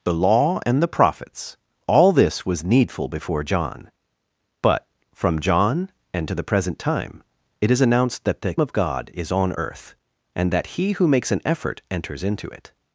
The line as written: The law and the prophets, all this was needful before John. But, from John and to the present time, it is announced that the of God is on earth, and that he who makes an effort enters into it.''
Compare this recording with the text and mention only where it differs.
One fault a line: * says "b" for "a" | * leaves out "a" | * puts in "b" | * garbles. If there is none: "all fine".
all fine